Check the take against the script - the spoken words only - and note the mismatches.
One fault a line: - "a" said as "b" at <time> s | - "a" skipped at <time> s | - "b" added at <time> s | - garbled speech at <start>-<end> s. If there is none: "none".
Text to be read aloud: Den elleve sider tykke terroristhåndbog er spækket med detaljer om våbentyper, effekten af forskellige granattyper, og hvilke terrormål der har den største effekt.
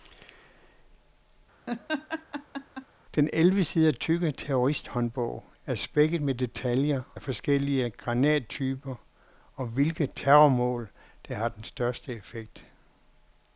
- "om våbentyper effekten" skipped at 7.0 s